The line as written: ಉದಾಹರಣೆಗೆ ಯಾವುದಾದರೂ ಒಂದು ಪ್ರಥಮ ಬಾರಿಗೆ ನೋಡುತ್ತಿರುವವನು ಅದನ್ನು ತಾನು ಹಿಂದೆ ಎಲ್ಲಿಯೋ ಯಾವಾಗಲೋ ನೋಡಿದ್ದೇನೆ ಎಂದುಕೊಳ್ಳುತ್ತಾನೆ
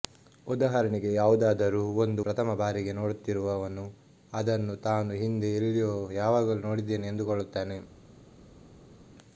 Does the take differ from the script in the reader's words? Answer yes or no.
no